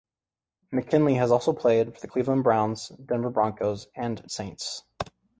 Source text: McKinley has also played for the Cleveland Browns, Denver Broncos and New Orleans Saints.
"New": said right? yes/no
no